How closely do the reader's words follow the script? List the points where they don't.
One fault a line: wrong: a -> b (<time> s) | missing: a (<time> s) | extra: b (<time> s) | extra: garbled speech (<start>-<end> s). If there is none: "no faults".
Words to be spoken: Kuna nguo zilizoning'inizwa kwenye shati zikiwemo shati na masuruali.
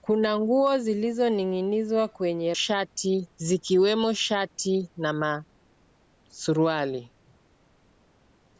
no faults